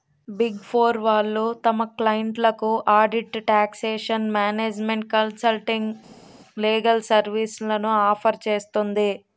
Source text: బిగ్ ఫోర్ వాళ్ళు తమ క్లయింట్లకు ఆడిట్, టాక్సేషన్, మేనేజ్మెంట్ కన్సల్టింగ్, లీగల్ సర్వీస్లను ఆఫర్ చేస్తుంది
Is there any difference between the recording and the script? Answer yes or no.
no